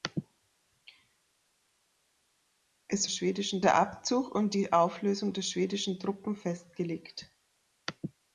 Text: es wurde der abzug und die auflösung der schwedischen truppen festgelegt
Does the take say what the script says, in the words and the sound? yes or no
no